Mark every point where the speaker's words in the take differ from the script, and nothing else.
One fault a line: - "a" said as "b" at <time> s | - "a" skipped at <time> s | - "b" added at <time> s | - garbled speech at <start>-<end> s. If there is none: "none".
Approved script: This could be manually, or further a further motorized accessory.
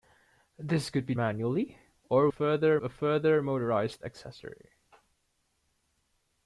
none